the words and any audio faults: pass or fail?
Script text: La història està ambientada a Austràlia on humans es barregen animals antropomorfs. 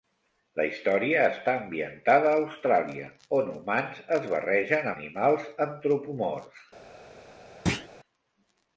fail